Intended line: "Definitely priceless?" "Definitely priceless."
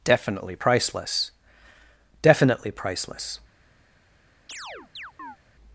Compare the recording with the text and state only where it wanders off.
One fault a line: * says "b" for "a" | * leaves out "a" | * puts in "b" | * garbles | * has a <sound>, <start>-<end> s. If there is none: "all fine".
* has a chirp, 4.5-5.4 s